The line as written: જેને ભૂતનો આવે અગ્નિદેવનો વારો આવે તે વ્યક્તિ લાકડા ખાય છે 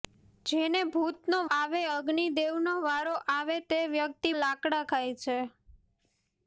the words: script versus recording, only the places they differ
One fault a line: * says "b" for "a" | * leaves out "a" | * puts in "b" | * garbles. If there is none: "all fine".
all fine